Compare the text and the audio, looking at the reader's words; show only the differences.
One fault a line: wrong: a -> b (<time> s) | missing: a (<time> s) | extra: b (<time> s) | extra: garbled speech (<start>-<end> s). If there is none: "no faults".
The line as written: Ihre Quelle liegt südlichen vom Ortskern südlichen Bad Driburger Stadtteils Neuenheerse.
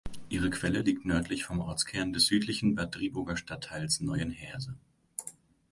wrong: südlichen -> nördlich (1.1 s)
extra: des (2.1 s)